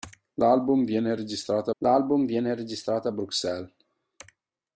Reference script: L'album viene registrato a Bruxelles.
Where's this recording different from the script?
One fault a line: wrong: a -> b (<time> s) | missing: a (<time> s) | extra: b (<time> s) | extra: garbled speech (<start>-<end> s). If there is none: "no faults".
extra: l'album viene registrato (1.8 s)